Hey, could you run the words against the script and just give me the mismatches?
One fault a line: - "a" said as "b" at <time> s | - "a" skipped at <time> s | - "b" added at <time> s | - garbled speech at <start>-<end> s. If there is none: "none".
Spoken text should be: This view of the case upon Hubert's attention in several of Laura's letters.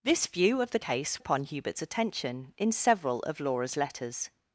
none